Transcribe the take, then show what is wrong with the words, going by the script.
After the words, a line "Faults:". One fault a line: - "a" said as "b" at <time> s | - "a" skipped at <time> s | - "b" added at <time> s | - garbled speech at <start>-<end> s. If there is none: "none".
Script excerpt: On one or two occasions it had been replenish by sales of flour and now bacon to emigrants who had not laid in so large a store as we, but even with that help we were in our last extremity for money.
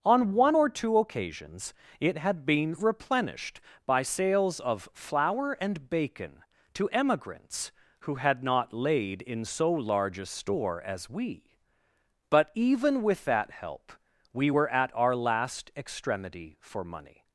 On one or two occasions it had been replenished by sales of flour and bacon to emigrants who had not laid in so large a store as we, but even with that help we were at our last extremity for money.
Faults:
- "replenish" said as "replenished" at 2.7 s
- "now" skipped at 5.9 s
- "in" said as "at" at 14.7 s